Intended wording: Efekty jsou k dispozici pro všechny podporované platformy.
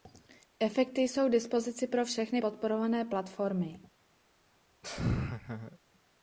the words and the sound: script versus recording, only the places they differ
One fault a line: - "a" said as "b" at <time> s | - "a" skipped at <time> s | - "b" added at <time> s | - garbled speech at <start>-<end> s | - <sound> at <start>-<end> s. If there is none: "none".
- laugh at 4.8-5.8 s